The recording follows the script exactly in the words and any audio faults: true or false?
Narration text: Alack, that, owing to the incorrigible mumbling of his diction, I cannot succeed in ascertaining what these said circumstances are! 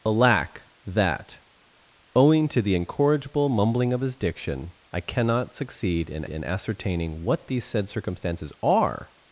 false